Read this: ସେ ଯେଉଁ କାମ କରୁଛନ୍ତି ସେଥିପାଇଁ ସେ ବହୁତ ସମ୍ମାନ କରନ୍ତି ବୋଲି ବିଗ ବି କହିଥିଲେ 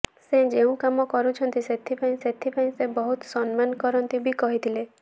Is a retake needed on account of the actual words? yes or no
yes